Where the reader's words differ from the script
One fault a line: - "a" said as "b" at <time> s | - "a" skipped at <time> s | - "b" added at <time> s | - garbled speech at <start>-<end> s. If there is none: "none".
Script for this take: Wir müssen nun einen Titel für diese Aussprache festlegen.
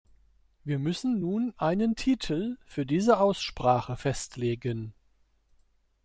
none